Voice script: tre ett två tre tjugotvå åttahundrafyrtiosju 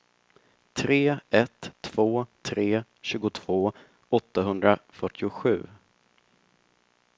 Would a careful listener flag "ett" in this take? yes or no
no